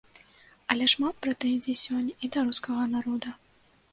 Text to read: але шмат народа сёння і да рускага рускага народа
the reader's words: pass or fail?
fail